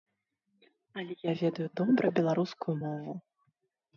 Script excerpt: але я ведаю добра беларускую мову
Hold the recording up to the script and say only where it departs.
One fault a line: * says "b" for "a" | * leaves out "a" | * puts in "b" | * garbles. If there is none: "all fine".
all fine